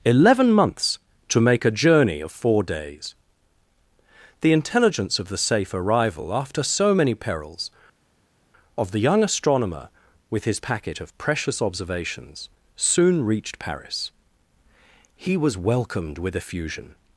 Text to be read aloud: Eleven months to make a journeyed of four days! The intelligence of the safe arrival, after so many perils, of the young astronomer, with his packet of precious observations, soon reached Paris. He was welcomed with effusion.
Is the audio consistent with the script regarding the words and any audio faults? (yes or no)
no